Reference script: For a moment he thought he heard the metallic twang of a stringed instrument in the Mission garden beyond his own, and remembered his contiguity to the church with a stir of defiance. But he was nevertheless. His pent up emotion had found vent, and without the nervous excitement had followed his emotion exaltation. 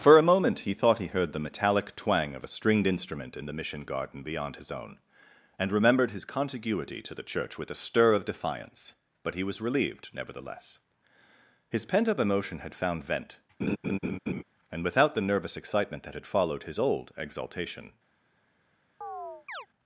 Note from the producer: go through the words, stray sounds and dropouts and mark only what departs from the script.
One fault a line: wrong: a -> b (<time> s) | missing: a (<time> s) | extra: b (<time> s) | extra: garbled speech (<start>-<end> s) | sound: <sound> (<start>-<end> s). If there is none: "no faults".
extra: relieved (9.6 s)
sound: laugh (13.6-14.4 s)
extra: that (16.0 s)
wrong: emotion -> old (16.8 s)
sound: chirp (19.0-19.7 s)